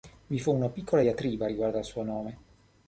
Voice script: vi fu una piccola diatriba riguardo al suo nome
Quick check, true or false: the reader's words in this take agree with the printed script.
true